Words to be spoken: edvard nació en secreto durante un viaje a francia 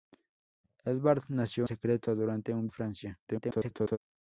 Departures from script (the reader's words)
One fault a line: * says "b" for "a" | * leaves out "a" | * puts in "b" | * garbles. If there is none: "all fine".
* leaves out "en"
* leaves out "viaje"
* garbles